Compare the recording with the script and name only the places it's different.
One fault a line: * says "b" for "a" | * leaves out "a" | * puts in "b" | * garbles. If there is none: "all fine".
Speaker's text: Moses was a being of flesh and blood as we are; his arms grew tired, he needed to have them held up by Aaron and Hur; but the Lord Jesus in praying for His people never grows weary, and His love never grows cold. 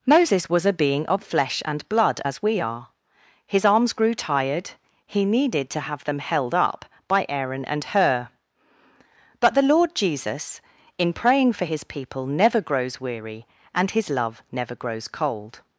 all fine